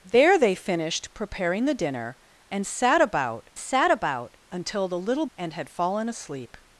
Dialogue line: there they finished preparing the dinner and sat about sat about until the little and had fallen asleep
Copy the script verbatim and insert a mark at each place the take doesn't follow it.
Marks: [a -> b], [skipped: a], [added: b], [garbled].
there they finished preparing the dinner and sat about sat about until the little and had fallen asleep